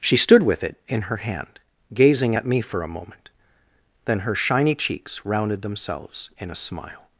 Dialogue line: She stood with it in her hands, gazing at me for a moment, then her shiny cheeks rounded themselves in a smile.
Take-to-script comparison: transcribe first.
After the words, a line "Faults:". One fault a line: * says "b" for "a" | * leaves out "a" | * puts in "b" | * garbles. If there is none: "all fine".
She stood with it in her hand, gazing at me for a moment, then her shiny cheeks rounded themselves in a smile.
Faults:
* says "hand" for "hands"